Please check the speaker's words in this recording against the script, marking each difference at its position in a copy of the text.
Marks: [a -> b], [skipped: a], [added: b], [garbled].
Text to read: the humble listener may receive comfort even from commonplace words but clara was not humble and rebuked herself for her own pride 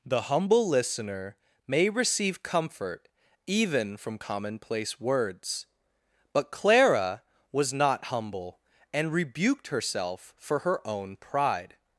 the humble listener may receive comfort even from commonplace words but clara was not humble and rebuked herself for her own pride